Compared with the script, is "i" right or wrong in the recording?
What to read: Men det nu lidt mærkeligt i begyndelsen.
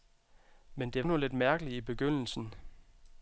right